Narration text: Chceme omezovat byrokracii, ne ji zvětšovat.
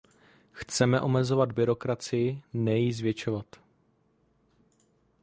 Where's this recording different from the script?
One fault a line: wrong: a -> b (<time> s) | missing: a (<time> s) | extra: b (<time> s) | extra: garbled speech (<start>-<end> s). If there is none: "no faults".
no faults